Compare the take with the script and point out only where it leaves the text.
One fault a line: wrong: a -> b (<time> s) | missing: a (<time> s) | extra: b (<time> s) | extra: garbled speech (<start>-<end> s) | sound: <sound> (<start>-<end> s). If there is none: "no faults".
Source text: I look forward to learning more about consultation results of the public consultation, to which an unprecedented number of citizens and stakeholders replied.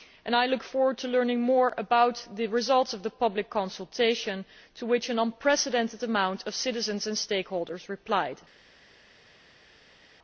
wrong: consultation -> the (2.3 s)